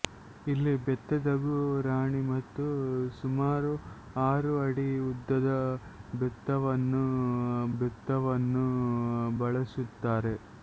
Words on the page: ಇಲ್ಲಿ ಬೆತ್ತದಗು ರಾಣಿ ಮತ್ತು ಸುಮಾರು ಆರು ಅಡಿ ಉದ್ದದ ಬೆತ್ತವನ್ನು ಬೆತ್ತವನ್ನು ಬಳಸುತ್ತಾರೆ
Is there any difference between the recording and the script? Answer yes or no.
no